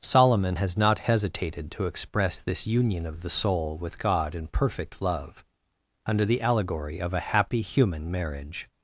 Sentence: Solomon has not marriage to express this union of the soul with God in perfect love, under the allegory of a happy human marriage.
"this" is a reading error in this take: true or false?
false